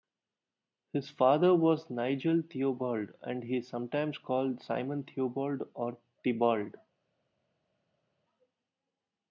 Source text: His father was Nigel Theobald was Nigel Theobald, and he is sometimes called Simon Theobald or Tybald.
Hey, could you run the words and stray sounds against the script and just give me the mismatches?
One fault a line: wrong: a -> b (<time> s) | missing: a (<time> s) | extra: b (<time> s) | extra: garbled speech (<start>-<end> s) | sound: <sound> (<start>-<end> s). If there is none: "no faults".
missing: was Nigel Theobald (3.1 s)